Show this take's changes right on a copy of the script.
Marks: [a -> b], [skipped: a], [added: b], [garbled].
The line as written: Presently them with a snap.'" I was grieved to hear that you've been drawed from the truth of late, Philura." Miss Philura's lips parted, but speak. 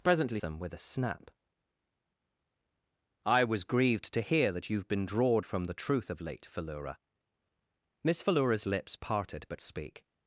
Presently them with a snap.'" I was grieved to hear that you've been drawed from the truth of late, Philura." Miss Philura's lips parted, but speak.